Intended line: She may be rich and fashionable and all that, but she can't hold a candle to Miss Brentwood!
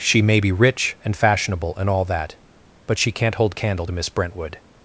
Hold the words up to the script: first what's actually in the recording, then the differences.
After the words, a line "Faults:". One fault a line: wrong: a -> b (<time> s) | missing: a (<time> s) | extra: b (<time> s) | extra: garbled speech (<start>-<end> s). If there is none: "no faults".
She may be rich and fashionable and all that, but she can't hold candle to Miss Brentwood!
Faults:
missing: a (3.6 s)